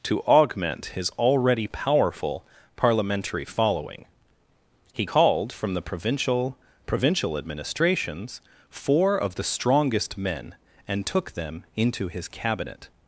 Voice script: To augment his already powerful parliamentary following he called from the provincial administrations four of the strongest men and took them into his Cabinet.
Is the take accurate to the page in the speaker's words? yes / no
no